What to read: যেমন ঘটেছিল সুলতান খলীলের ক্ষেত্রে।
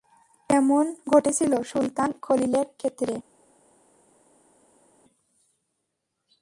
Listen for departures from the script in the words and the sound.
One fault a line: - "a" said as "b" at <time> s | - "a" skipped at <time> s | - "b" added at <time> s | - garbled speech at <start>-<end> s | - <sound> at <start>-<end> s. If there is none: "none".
none